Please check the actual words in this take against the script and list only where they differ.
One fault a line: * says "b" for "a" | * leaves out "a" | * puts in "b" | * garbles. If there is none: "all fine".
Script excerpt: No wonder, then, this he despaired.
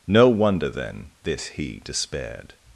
all fine